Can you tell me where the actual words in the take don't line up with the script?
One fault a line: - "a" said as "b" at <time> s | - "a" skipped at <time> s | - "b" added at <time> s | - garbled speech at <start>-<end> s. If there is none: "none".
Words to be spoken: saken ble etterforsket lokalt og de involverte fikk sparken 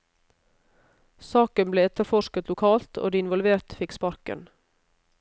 none